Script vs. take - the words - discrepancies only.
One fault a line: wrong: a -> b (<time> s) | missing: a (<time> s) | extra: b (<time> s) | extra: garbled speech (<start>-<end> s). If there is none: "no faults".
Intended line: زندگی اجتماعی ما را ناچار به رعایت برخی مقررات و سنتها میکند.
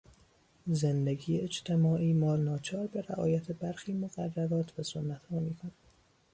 missing: را (2.4 s)